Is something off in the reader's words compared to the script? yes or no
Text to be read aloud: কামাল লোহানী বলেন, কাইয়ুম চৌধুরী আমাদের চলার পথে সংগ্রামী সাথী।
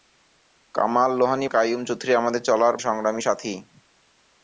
yes